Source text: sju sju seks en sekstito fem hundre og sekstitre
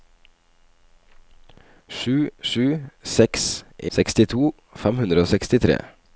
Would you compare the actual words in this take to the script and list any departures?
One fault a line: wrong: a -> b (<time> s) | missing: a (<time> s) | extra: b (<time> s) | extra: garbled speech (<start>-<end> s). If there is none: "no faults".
missing: en (3.5 s)